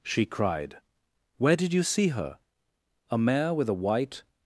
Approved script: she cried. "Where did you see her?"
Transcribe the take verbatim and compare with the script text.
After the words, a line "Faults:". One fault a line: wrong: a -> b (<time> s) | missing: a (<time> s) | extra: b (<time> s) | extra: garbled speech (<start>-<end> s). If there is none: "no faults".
she cried. "Where did you see her?" "A mare with a white
Faults:
extra: A mare with a white (3.1 s)